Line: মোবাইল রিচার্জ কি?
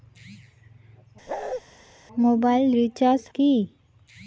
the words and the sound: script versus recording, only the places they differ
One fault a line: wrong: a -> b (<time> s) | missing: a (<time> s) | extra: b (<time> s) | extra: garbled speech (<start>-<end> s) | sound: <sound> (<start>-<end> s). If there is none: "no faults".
sound: bark (1.3-1.6 s)